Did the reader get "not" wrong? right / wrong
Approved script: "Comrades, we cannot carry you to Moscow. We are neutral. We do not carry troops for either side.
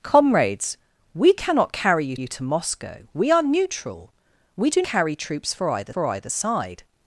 wrong